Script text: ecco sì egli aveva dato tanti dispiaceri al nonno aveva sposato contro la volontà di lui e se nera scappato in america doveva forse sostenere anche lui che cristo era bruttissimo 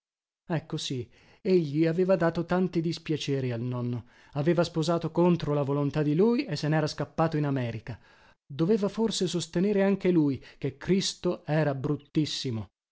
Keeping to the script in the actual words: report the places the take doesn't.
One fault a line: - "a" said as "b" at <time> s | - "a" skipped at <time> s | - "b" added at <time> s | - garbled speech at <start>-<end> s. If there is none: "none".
none